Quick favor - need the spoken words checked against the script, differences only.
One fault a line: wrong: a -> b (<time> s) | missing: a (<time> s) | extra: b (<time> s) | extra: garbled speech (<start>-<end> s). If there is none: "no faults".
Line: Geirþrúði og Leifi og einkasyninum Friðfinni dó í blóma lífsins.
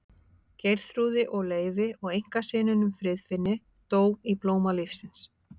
no faults